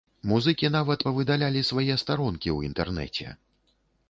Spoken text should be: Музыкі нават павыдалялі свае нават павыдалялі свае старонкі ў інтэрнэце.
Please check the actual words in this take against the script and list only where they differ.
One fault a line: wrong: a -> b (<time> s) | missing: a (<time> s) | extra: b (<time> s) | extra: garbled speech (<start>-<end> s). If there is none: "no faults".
missing: нават павыдалялі свае (2.0 s)